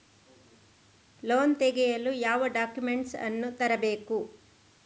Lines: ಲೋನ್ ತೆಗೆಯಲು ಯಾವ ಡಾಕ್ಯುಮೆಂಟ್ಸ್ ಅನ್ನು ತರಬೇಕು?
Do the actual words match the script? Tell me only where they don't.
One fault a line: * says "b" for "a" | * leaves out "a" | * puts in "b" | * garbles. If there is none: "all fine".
all fine